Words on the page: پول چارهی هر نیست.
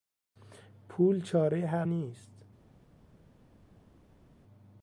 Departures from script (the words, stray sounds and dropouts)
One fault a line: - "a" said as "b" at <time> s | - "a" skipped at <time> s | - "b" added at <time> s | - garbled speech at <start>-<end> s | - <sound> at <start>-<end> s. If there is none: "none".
none